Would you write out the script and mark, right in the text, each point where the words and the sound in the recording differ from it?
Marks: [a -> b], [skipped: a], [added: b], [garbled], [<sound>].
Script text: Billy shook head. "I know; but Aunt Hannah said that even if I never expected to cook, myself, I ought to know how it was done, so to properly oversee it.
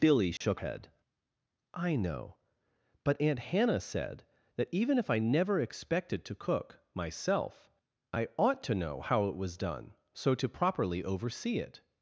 Billy shook [dropout] head. "I know; but Aunt Hannah said that even if I never expected to cook, myself, I ought to know how it was done, so to properly oversee it.